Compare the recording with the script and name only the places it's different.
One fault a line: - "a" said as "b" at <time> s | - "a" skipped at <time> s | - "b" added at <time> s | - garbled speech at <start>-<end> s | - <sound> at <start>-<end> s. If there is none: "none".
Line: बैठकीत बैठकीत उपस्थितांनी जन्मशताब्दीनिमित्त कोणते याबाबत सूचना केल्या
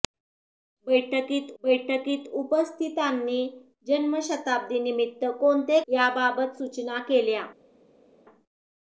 none